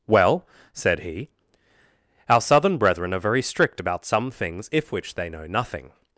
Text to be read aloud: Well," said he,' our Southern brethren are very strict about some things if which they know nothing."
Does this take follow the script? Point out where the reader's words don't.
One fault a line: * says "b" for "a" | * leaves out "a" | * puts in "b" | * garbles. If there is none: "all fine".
all fine